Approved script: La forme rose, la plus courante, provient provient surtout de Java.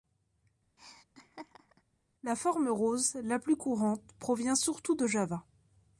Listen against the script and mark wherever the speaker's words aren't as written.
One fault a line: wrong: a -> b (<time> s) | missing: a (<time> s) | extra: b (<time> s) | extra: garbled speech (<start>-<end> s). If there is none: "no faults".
missing: provient (4.5 s)